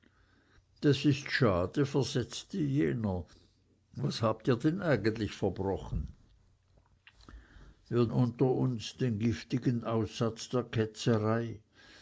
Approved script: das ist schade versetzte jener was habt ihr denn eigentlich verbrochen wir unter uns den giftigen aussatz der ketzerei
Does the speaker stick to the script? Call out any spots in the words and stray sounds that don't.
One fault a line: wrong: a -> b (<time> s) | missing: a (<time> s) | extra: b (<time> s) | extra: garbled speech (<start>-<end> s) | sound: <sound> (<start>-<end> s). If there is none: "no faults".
no faults